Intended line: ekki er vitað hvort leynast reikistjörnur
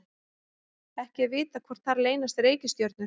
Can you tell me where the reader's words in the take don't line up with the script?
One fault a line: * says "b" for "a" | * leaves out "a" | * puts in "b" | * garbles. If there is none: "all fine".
* puts in "þar"